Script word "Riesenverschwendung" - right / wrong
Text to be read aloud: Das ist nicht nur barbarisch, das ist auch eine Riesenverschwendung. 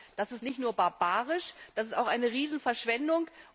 right